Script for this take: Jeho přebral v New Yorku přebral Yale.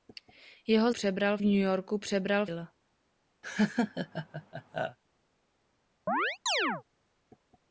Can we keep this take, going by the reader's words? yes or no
yes